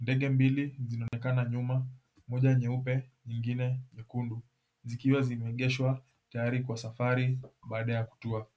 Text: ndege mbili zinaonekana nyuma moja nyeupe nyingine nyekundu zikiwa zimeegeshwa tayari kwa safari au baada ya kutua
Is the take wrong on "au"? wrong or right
wrong